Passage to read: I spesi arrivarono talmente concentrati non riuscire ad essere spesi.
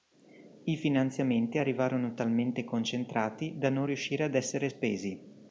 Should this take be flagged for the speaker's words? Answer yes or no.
yes